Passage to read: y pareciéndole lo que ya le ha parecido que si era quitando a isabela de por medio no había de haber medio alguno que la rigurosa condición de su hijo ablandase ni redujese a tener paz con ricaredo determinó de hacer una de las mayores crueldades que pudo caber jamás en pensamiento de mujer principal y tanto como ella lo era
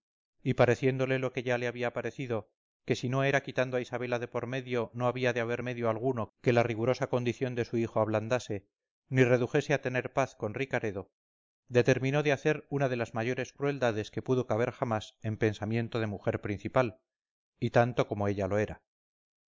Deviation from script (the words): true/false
true